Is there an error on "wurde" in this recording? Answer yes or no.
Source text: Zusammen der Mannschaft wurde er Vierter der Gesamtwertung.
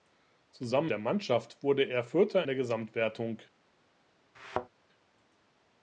no